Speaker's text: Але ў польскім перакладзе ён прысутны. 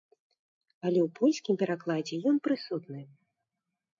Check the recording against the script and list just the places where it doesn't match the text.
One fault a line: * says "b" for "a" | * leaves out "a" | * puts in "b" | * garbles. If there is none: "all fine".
all fine